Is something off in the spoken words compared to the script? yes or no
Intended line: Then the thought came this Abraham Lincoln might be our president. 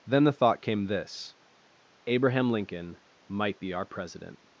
no